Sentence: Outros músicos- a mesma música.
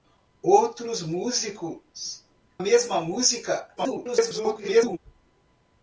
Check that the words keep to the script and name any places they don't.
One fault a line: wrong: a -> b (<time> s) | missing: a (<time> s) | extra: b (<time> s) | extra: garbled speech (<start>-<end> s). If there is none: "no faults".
missing: a (2.2 s)
extra: garbled speech (3.8-5.0 s)